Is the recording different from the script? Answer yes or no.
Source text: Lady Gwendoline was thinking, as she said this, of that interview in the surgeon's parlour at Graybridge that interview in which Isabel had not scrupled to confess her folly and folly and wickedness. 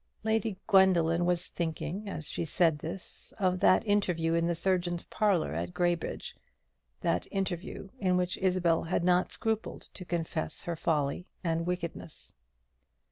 yes